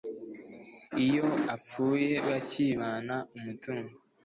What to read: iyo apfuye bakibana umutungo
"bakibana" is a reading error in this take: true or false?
false